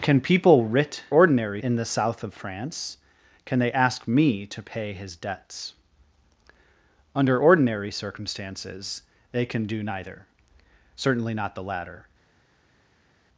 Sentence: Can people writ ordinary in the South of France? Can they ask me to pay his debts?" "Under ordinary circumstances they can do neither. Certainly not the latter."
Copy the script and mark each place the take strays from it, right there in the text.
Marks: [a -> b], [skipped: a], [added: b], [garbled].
Can people writ ordinary in the South of France? Can they ask me to pay his debts?" "Under ordinary circumstances they can do neither. Certainly not the latter."